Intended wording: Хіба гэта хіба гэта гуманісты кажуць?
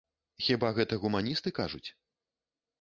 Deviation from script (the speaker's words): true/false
true